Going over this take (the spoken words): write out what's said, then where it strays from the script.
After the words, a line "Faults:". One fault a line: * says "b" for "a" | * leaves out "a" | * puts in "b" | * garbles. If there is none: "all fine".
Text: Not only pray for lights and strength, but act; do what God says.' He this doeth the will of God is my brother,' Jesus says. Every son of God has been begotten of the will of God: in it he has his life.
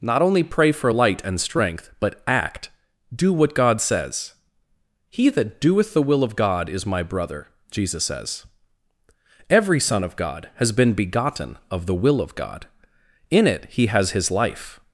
Not only pray for light and strength, but act; do what God says.' He that doeth the will of God is my brother,' Jesus says. Every son of God has been begotten of the will of God: in it he has his life.
Faults:
* says "light" for "lights"
* says "that" for "this"